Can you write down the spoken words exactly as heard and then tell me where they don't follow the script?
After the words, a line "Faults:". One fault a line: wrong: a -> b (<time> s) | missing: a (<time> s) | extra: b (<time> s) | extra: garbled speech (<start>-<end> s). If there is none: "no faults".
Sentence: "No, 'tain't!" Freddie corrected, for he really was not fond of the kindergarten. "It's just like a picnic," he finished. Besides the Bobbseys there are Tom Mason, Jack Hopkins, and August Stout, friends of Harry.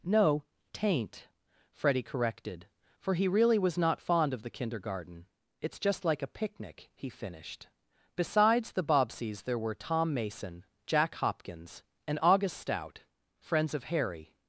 "No, 'tain't!" Freddie corrected, for he really was not fond of the kindergarten. "It's just like a picnic," he finished. Besides the Bobbseys there were Tom Mason, Jack Hopkins, and August Stout, friends of Harry.
Faults:
wrong: are -> were (9.6 s)